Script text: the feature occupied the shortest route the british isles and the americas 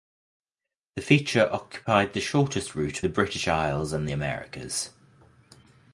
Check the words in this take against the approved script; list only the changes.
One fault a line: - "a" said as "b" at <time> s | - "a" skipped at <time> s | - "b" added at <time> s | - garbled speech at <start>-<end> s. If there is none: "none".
none